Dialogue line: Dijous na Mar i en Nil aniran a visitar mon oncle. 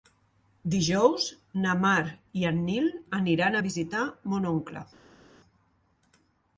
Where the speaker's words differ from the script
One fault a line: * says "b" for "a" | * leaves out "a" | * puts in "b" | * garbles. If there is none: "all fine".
all fine